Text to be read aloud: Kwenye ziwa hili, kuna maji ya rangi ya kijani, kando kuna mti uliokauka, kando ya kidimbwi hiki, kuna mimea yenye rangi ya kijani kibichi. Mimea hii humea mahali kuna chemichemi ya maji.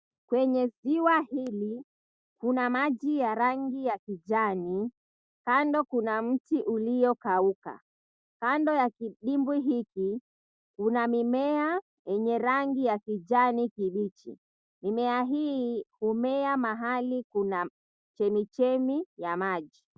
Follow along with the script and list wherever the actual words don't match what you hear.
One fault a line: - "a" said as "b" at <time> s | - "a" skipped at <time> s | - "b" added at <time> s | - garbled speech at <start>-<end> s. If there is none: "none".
none